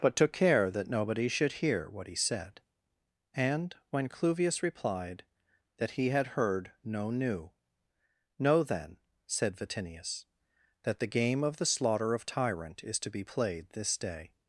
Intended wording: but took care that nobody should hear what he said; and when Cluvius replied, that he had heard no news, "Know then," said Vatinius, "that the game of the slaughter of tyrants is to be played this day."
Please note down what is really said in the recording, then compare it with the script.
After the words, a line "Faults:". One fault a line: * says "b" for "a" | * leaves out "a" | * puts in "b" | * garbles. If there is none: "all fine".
but took care that nobody should hear what he said; and when Cluvius replied, that he had heard no new, "Know then," said Vatinius, "that the game of the slaughter of tyrant is to be played this day."
Faults:
* says "new" for "news"
* says "tyrant" for "tyrants"